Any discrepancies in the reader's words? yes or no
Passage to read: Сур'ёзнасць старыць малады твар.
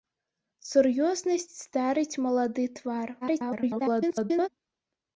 yes